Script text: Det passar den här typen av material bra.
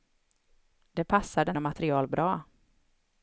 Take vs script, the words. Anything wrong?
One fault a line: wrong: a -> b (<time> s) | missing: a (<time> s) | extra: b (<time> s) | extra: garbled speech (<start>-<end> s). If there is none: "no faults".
missing: här typen (1.6 s)